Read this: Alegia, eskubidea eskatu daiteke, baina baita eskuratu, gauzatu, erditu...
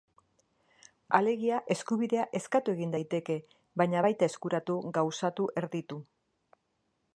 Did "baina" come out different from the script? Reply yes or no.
no